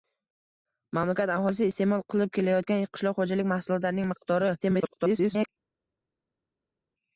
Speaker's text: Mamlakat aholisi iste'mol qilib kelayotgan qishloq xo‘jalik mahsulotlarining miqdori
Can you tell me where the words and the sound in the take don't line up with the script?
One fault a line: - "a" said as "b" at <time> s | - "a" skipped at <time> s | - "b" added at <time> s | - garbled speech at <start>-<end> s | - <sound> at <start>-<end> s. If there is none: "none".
- garbled speech at 4.6-5.5 s